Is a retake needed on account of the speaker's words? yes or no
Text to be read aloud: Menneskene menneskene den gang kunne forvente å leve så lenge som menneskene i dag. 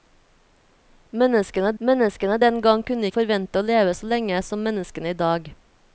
no